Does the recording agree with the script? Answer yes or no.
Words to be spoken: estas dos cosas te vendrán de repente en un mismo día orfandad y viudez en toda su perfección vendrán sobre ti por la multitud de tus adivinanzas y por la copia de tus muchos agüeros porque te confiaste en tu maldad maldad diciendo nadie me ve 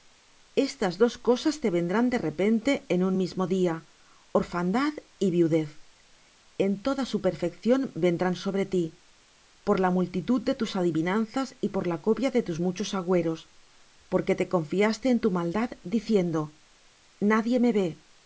no